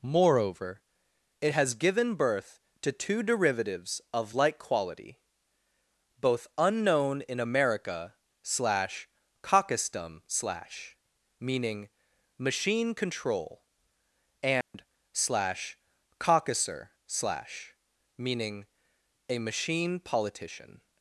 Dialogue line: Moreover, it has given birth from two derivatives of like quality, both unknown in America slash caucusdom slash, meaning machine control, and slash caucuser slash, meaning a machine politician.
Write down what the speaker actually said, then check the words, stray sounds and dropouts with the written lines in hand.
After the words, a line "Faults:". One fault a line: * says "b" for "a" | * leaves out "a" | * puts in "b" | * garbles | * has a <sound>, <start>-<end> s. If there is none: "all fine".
Moreover, it has given birth to two derivatives of like quality, both unknown in America slash caucusdom slash, meaning machine control, and slash caucuser slash, meaning a machine politician.
Faults:
* says "to" for "from"
* has a dropout, 14.6-14.7 s